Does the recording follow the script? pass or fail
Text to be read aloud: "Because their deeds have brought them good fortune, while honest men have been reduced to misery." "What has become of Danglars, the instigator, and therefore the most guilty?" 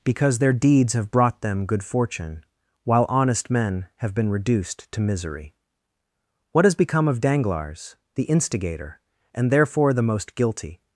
pass